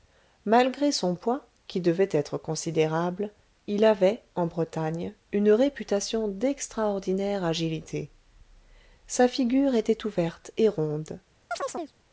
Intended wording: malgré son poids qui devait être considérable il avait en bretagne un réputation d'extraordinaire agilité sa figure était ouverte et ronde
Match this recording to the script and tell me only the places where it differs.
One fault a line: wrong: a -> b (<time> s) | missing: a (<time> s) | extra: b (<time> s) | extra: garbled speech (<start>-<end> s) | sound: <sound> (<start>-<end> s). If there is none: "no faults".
wrong: un -> une (5.3 s)
sound: chirp (11.5-11.9 s)